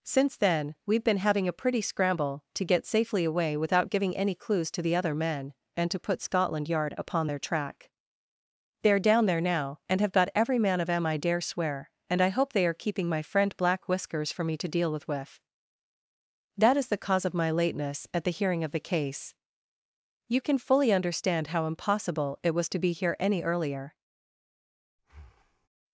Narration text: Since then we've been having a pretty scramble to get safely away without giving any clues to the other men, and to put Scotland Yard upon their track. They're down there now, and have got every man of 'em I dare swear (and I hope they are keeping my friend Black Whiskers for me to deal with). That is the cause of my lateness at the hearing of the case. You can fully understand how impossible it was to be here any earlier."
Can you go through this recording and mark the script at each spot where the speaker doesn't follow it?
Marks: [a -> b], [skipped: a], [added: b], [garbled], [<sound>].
Since then we've been having a pretty scramble to get safely away without giving any clues to the other men, and to put Scotland Yard upon their track. They're down there now, and have got every man of 'em I dare swear (and I hope they are keeping my friend Black Whiskers for me to deal with). [added: with] That is the cause of my lateness at the hearing of the case. You can fully understand how impossible it was to be here any earlier." [breath]